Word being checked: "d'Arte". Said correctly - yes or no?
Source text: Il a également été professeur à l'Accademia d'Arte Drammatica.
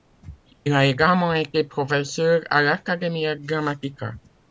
no